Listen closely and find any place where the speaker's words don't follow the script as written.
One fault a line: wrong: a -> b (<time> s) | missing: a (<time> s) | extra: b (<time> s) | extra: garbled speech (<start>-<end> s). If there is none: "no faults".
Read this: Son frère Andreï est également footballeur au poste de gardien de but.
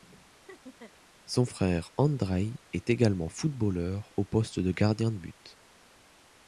no faults